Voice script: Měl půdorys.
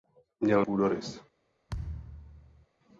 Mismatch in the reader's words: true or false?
false